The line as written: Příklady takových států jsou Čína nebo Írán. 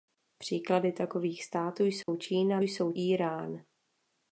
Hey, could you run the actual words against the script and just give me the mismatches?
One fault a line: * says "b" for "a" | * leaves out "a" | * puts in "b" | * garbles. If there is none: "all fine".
* says "jsou" for "nebo"